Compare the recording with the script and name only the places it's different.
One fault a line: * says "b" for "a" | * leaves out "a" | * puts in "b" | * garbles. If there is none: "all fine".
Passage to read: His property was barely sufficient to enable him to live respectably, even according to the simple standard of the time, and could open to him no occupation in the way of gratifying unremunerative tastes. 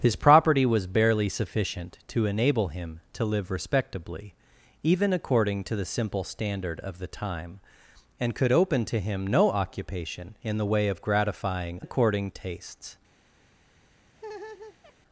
* says "according" for "unremunerative"